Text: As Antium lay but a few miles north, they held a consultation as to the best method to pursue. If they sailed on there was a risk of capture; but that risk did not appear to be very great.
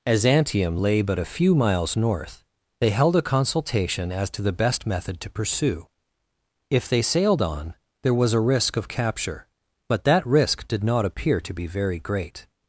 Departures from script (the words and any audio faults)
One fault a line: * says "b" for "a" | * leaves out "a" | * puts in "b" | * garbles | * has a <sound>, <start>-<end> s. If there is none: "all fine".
all fine